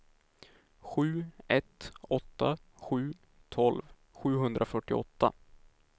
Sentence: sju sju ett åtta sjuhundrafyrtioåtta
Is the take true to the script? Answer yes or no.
no